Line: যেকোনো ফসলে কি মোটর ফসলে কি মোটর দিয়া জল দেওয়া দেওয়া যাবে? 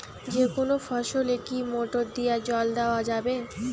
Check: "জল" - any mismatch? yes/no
no